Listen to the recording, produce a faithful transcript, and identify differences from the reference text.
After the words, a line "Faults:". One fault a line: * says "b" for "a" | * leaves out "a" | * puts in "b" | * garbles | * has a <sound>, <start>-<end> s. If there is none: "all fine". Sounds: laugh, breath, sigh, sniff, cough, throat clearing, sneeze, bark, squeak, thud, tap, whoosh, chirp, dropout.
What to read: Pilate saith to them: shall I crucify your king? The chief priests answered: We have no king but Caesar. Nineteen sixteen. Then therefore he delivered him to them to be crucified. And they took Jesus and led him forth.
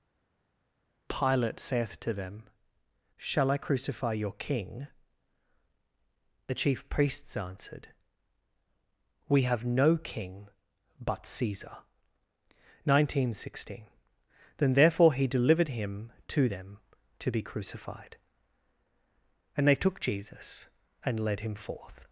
Pilate saith to them: shall I crucify your king? The chief priests answered: We have no king but Caesar. Nineteen sixteen. Then therefore he delivered him to them to be crucified. And they took Jesus and led him forth.
Faults:
all fine